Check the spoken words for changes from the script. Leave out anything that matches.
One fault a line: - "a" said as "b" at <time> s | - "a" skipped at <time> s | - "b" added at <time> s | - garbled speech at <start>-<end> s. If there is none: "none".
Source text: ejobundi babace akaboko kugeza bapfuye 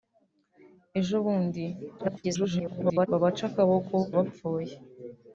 - garbled speech at 2.0-3.1 s
- "kugeza" skipped at 4.0 s